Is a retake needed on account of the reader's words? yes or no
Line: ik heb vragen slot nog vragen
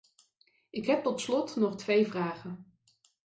yes